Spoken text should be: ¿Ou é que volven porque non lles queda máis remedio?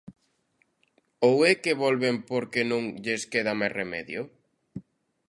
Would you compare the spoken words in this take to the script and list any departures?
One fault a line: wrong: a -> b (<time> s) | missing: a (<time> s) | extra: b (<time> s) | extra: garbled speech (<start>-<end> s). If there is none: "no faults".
no faults